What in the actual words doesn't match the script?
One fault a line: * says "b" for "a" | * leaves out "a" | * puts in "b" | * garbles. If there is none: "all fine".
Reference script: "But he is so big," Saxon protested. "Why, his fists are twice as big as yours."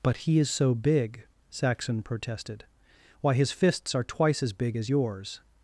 all fine